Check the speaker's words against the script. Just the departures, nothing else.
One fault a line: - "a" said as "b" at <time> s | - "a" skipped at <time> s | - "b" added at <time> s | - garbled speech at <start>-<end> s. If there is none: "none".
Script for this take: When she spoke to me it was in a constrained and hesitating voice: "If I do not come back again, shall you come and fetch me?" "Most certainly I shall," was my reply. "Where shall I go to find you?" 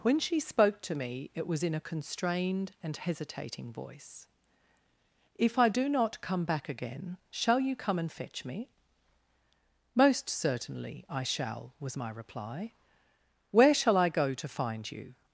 none